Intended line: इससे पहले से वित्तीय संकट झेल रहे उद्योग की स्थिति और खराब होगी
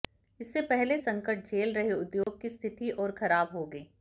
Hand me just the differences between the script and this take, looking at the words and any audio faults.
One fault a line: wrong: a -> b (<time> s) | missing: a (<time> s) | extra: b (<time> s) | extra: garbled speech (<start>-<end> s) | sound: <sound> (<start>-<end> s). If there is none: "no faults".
missing: से वित्तीय (1.0 s)
sound: dropout (2.2-2.3 s)